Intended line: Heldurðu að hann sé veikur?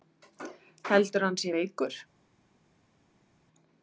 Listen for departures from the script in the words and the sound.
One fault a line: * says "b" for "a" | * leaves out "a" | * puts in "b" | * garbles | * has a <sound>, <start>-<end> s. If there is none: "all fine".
all fine